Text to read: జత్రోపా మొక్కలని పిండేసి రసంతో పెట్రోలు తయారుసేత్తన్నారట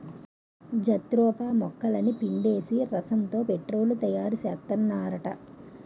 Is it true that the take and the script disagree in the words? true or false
false